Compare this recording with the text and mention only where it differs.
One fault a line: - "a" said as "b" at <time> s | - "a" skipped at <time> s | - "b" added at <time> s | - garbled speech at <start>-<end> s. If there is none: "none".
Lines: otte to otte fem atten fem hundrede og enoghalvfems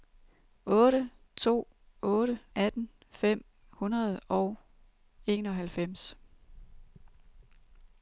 - "fem" skipped at 2.4 s